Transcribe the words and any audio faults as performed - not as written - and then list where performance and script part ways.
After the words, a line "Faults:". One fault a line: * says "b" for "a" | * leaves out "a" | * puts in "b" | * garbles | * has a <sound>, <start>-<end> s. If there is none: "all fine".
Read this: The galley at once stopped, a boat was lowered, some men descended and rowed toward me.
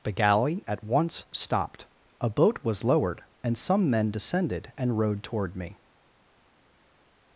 The galley at once stopped, a boat was lowered, and some men descended and rowed toward me.
Faults:
* puts in "and"